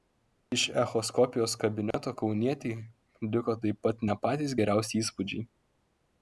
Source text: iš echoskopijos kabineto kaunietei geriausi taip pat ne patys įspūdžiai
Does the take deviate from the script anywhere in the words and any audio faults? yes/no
yes